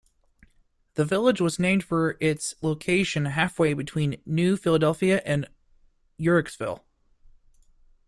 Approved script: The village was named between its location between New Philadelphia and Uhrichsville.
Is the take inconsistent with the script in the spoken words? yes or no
yes